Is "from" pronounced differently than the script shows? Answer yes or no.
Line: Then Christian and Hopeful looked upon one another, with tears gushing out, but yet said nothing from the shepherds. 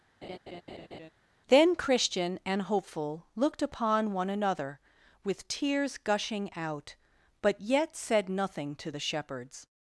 yes